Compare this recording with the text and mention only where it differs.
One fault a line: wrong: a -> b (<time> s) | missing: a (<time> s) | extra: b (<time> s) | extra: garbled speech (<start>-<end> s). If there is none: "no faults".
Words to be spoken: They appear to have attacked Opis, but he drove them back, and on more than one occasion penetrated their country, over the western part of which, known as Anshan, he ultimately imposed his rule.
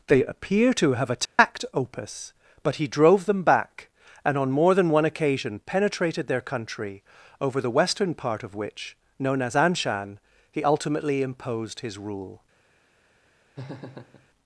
no faults